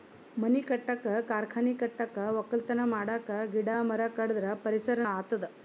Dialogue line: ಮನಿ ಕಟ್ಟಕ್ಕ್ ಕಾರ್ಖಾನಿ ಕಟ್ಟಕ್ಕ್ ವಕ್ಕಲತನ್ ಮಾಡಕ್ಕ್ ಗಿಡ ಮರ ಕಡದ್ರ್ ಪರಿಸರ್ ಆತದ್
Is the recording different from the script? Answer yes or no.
no